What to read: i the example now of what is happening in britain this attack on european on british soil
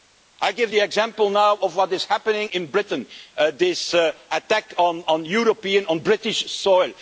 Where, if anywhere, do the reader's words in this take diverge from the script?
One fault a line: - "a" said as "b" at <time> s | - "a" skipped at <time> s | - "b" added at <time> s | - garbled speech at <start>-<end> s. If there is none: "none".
- "give" added at 0.5 s